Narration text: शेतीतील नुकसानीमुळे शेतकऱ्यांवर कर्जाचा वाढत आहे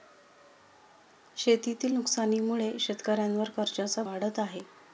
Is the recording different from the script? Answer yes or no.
no